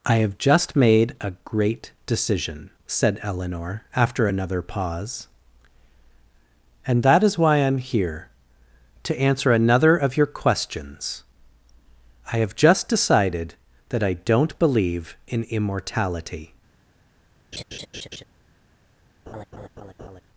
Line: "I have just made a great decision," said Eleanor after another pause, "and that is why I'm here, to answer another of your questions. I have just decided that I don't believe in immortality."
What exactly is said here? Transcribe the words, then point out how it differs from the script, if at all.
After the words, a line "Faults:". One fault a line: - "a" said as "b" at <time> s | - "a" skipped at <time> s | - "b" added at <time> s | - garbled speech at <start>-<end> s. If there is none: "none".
"I have just made a great decision," said Eleanor after another pause, "and that is why I'm here, to answer another of your questions. I have just decided that I don't believe in immortality."
Faults:
none